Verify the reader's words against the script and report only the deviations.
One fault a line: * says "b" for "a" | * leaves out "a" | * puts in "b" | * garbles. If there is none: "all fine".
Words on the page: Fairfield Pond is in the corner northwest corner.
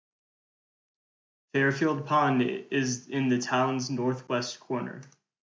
* says "town's" for "corner"